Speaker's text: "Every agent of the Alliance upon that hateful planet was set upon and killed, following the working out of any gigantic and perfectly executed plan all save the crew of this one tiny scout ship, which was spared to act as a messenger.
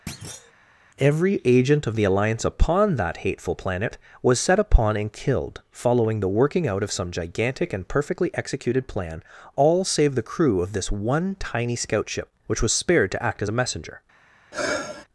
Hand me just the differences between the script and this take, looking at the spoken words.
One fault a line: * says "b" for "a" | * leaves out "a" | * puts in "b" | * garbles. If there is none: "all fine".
* says "some" for "any"